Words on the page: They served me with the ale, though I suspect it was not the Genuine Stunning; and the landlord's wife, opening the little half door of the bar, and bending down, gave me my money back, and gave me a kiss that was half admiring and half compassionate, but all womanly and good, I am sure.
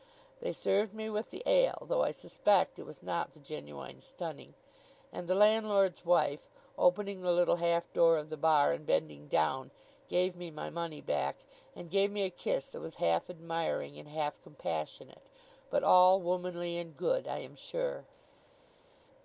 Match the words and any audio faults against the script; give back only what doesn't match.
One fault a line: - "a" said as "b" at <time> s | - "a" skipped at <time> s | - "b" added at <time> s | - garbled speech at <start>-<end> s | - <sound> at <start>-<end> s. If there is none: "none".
none